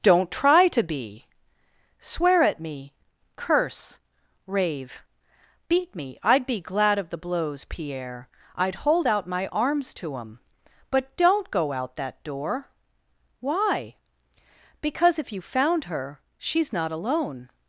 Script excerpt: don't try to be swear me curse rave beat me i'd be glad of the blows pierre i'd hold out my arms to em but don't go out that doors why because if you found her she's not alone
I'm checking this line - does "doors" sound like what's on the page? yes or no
no